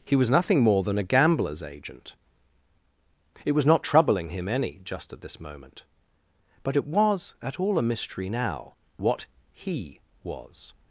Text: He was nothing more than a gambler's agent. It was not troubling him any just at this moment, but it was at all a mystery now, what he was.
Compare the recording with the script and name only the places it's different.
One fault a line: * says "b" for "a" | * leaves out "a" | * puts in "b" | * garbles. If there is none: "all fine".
all fine